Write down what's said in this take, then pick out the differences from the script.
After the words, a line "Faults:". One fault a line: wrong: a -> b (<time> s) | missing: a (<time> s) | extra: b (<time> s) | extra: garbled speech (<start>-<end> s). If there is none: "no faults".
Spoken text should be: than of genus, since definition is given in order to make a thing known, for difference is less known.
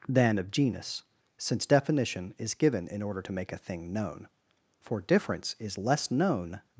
than of genus, since definition is given in order to make a thing known, for difference is less known.
Faults:
no faults